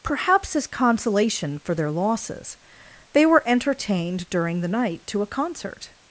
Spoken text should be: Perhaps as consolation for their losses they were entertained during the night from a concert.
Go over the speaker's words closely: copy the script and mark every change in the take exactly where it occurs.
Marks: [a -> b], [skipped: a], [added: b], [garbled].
Perhaps as consolation for their losses they were entertained during the night [from -> to] a concert.